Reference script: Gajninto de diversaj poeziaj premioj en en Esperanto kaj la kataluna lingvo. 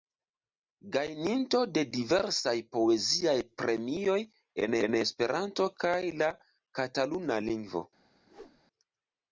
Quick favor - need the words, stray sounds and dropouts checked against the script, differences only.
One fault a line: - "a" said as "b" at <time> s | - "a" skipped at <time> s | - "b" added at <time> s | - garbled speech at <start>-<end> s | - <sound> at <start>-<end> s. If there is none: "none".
- whoosh at 8.3-8.6 s